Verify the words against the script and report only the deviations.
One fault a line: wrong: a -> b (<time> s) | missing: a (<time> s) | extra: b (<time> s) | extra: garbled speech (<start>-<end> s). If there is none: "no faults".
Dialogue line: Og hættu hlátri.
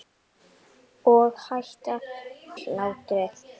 no faults